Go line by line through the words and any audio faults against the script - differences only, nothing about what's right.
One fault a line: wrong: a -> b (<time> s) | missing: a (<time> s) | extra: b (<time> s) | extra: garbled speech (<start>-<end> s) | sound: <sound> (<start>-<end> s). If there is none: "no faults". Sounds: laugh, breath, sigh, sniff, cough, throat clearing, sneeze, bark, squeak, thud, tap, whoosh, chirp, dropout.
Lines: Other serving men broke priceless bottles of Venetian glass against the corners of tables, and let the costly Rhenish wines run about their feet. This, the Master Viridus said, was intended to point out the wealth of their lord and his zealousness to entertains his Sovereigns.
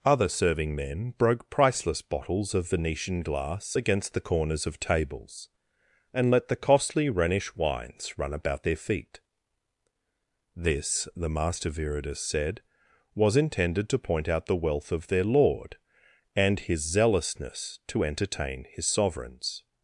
wrong: entertains -> entertain (18.0 s)